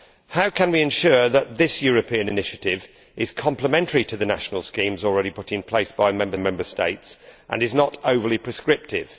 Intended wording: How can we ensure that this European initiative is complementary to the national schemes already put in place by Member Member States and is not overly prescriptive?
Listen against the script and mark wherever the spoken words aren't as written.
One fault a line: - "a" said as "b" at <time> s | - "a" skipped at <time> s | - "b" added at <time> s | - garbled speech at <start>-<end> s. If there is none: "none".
none